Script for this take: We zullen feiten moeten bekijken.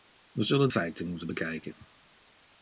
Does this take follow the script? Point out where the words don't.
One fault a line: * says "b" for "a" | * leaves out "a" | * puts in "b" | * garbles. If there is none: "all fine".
all fine